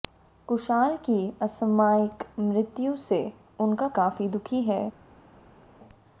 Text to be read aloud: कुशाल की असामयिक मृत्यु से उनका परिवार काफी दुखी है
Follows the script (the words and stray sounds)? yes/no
no